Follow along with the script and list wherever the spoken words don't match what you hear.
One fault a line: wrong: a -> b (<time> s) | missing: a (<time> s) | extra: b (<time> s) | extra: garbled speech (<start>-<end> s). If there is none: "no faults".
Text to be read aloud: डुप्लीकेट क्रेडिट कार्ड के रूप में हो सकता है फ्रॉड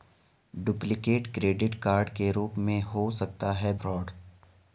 no faults